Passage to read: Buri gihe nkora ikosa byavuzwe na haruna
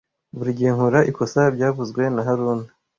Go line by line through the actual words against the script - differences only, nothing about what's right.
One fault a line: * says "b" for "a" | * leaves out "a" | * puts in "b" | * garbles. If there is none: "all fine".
all fine